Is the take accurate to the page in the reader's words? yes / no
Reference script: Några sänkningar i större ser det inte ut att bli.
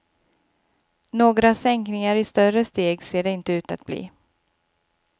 no